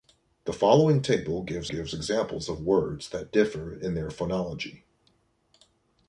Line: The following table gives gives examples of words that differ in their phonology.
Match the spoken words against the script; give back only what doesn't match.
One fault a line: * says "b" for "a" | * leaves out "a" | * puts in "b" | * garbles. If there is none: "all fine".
all fine